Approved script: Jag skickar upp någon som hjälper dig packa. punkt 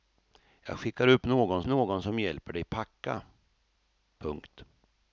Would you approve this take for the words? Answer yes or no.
no